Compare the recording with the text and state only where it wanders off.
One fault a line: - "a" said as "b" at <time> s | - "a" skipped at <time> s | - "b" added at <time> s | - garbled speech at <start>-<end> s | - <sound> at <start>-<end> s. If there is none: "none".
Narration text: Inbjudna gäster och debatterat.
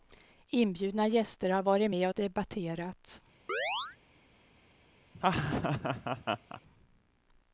- "har varit med" added at 1.5 s
- chirp at 3.5-4.0 s
- laugh at 5.1-6.6 s